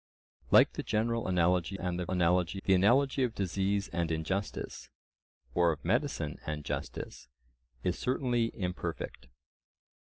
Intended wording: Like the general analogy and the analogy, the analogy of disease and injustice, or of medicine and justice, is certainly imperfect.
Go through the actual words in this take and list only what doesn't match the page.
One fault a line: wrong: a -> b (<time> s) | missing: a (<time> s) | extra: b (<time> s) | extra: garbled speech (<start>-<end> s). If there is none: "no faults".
no faults